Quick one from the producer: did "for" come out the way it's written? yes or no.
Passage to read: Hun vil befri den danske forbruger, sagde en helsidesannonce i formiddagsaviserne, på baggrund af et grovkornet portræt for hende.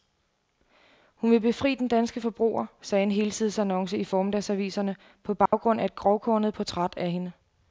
no